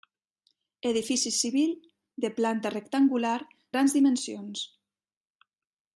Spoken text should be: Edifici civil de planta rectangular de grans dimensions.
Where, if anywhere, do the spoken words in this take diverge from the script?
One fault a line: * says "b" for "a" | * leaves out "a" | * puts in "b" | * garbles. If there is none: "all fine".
* leaves out "de"